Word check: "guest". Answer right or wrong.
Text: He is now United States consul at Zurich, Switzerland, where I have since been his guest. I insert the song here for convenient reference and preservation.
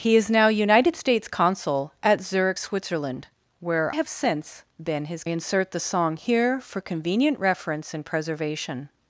wrong